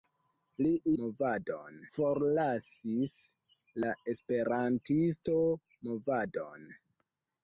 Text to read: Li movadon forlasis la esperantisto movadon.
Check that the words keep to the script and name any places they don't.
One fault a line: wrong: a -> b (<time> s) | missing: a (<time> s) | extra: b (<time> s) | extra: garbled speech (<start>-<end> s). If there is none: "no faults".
no faults